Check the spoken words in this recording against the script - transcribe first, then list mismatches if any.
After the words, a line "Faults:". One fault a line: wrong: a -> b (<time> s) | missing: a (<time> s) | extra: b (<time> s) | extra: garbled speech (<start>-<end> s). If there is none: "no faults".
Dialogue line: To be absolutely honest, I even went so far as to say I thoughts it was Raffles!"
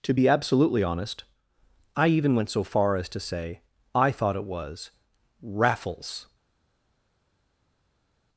To be absolutely honest, I even went so far as to say I thought it was Raffles!"
Faults:
wrong: thoughts -> thought (4.1 s)